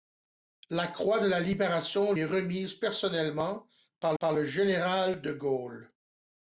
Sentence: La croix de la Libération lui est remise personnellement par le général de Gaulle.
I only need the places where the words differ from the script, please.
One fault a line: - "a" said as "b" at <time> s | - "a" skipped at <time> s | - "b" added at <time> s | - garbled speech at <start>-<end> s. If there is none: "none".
- "lui" skipped at 2.1 s
- "par" added at 4.2 s